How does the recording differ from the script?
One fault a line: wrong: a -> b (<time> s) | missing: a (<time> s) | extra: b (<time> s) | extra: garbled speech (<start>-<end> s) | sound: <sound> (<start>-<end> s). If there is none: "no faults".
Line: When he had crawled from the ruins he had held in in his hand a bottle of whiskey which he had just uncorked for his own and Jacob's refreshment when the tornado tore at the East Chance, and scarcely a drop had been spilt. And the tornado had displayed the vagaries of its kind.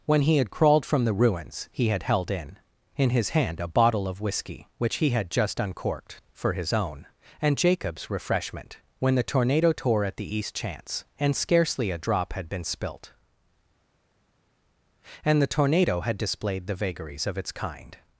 no faults